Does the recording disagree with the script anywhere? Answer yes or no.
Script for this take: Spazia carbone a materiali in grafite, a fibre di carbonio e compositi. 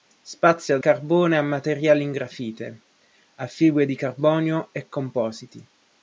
no